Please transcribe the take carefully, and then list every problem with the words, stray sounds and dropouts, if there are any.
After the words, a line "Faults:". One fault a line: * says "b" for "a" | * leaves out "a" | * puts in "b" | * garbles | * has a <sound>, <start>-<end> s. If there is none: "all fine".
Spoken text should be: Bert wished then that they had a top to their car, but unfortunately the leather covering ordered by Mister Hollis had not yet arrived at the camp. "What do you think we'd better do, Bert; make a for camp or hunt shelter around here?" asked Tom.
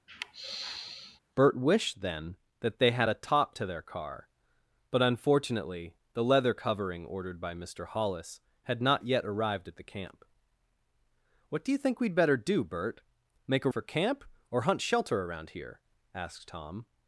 Bert wished then that they had a top to their car, but unfortunately the leather covering ordered by Mister Hollis had not yet arrived at the camp. "What do you think we'd better do, Bert; make a for camp or hunt shelter around here?" asked Tom.
Faults:
* has a sigh, 0.1-1.2 s